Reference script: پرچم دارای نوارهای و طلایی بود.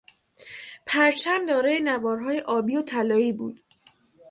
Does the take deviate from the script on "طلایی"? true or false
false